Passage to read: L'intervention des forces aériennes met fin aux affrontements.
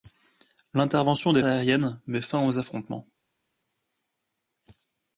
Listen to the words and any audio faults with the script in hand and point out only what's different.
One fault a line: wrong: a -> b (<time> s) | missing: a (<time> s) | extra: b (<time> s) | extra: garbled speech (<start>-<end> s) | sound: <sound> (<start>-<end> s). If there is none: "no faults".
missing: forces (1.4 s)